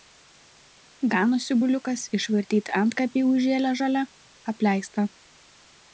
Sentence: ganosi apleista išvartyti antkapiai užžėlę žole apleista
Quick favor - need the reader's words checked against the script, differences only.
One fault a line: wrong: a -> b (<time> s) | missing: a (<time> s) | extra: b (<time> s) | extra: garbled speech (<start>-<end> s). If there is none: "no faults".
wrong: apleista -> buliukas (1.6 s)